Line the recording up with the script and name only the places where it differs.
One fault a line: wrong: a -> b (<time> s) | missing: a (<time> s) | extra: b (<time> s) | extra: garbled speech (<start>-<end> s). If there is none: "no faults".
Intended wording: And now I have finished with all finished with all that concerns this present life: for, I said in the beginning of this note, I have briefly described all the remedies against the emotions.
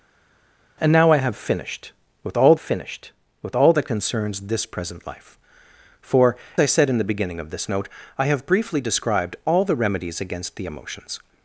no faults